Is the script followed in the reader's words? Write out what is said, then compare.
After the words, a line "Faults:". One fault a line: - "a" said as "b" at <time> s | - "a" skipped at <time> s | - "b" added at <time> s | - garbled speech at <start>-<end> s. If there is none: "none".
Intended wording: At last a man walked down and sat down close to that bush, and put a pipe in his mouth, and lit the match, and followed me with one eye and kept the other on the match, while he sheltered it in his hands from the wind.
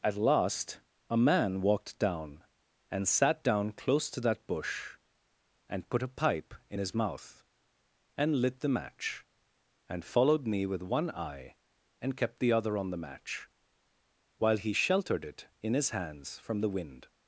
At last a man walked down and sat down close to that bush, and put a pipe in his mouth, and lit the match, and followed me with one eye and kept the other on the match, while he sheltered it in his hands from the wind.
Faults:
none